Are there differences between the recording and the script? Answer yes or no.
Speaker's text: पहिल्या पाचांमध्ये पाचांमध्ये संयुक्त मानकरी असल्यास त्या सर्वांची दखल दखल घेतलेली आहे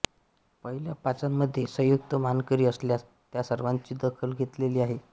yes